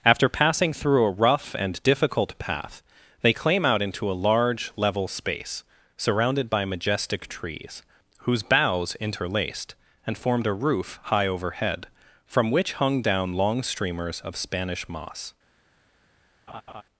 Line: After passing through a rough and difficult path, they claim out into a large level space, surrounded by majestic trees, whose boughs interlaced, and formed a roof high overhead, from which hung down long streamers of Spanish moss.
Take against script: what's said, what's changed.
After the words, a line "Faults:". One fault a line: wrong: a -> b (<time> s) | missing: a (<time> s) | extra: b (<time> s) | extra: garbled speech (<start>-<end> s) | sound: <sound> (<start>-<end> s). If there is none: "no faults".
After passing through a rough and difficult path, they claim out into a large level space, surrounded by majestic trees, whose boughs interlaced, and formed a roof high overhead, from which hung down long streamers of Spanish moss.
Faults:
sound: laugh (16.5-16.8 s)